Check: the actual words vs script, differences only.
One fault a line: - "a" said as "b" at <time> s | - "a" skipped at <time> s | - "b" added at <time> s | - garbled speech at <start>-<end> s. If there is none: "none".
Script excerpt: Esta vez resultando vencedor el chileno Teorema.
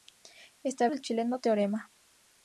- "vez resultando vencedor" skipped at 0.9 s